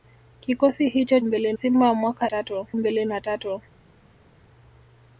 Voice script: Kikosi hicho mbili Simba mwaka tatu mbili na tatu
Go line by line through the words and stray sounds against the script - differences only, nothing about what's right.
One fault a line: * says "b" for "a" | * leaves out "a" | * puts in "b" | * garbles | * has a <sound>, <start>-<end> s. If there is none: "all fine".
all fine